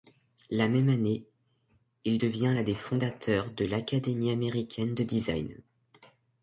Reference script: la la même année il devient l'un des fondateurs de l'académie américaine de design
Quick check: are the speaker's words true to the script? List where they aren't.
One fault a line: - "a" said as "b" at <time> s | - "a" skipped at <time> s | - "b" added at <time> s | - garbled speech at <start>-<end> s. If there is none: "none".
- "la" skipped at 0.7 s